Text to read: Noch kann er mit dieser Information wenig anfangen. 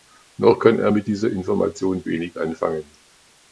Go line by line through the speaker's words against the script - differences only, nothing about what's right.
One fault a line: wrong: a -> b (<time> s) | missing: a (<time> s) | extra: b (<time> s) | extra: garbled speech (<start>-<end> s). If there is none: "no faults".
no faults